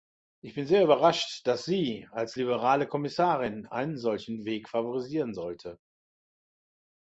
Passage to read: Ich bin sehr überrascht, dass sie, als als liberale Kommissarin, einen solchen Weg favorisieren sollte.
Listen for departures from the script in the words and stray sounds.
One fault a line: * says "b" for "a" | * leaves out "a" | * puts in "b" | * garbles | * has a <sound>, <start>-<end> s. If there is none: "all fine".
* leaves out "als"